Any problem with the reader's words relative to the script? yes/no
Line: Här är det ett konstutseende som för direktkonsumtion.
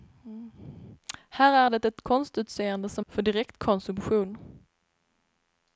no